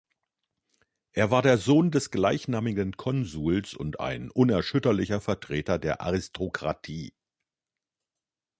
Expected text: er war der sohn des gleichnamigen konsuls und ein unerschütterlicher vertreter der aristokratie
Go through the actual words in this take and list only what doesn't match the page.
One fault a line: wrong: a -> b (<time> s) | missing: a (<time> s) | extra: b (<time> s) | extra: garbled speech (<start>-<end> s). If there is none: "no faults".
no faults